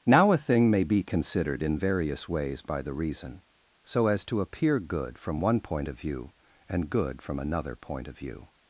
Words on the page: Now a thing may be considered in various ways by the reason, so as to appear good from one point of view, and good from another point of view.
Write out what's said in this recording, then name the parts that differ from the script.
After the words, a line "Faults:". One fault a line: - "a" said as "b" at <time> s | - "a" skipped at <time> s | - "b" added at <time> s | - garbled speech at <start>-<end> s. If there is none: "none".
Now a thing may be considered in various ways by the reason, so as to appear good from one point of view, and good from another point of view.
Faults:
none